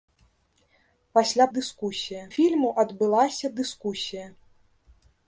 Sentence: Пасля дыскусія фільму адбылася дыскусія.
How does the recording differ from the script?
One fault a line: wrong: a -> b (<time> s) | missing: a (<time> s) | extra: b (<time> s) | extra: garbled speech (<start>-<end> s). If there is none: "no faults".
no faults